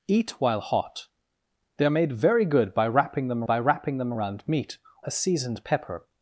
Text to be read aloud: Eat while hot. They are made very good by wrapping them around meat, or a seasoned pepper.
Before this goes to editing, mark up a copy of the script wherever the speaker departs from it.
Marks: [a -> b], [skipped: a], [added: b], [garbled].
Eat while hot. They are made very good by wrapping them [added: by wrapping them] around meat, [skipped: or] a seasoned pepper.